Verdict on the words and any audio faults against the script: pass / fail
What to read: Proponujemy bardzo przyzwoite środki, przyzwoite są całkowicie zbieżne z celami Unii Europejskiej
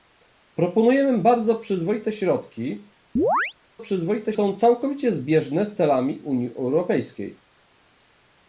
fail